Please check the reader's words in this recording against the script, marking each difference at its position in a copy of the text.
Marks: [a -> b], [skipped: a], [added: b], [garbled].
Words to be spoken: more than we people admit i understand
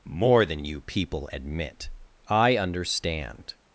more than [we -> you] people admit i understand